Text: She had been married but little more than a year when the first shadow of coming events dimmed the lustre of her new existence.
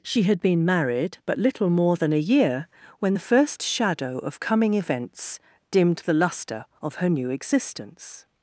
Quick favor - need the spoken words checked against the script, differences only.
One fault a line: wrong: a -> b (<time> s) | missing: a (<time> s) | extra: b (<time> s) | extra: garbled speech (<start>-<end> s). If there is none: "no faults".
no faults